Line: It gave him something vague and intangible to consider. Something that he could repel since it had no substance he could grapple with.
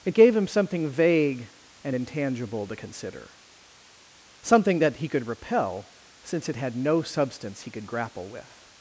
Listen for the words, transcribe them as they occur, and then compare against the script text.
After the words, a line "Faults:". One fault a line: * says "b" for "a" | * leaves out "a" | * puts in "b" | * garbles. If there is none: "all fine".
It gave him something vague and intangible to consider. Something that he could repel since it had no substance he could grapple with.
Faults:
all fine